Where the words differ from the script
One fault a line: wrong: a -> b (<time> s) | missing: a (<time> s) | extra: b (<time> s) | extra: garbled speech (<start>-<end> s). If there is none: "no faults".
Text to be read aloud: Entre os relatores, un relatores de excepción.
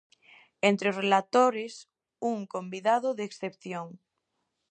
wrong: relatores -> convidado (2.5 s)